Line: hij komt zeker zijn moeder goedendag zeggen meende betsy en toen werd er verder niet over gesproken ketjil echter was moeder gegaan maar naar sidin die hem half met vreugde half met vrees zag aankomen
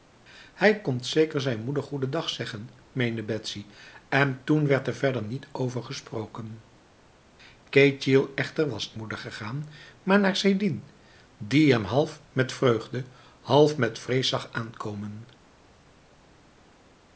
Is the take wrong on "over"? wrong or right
right